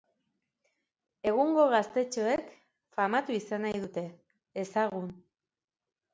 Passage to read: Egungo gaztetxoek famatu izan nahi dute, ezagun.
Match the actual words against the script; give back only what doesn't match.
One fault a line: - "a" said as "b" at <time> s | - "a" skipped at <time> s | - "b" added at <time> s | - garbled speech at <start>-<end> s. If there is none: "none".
none